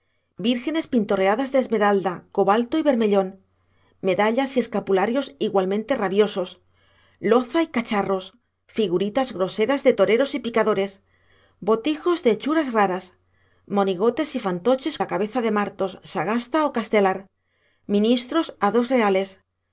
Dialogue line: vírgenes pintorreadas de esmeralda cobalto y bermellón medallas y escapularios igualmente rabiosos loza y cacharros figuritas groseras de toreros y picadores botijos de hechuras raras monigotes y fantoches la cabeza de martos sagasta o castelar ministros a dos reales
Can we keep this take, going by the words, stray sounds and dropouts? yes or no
yes